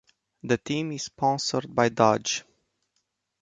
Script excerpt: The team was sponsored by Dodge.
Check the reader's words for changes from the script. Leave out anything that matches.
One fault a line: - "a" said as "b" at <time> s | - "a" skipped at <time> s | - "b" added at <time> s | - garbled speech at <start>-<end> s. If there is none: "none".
- "was" said as "is" at 0.9 s